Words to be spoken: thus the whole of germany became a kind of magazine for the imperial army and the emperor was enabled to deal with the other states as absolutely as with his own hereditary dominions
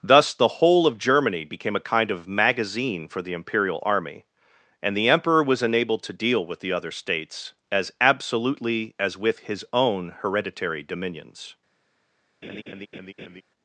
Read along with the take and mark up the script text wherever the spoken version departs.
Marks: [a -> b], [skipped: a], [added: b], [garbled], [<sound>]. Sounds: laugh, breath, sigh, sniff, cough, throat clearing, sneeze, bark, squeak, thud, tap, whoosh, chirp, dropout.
thus the whole of germany became a kind of magazine for the imperial army and the emperor was enabled to deal with the other states as absolutely as with his own hereditary dominions [laugh]